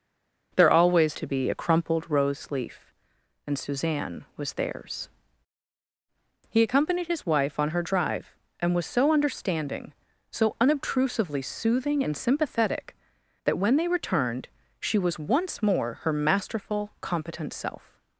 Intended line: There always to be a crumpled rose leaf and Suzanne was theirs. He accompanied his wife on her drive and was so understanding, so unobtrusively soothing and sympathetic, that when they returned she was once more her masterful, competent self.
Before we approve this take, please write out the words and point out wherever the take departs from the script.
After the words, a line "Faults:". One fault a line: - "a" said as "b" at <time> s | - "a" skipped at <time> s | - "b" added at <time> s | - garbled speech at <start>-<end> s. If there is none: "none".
There always to be a crumpled rose leaf and Suzanne was theirs. He accompanied his wife on her drive and was so understanding, so unobtrusively soothing and sympathetic, that when they returned she was once more her masterful, competent self.
Faults:
none